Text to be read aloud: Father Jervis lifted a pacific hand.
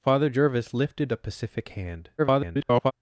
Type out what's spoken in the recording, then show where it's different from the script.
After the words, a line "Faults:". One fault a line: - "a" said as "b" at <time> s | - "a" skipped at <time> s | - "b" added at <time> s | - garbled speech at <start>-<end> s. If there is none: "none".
Father Jervis lifted a pacific hand. [garbled]
Faults:
- garbled speech at 2.2-2.9 s